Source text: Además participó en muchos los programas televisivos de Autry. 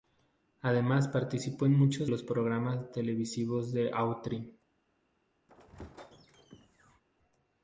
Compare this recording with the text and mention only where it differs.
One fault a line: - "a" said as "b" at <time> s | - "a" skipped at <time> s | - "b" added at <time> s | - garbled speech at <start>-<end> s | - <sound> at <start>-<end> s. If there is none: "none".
- squeak at 5.5-7.0 s